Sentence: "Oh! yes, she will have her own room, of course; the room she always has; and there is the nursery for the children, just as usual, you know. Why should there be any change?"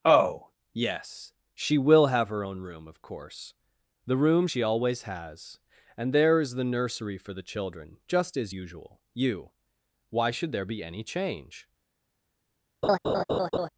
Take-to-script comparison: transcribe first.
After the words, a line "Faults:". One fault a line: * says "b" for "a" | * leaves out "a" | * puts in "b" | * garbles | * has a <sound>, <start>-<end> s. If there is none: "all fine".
"Oh! yes, she will have her own room, of course; the room she always has; and there is the nursery for the children, just as usual, you. Why should there be any change?"
Faults:
* leaves out "know"
* has a laugh, 12.8-13.7 s